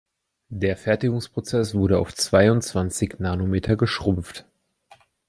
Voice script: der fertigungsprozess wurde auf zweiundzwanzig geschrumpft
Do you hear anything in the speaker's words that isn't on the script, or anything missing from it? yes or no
yes